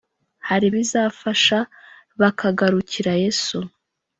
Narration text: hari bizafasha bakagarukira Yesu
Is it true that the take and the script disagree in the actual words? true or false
false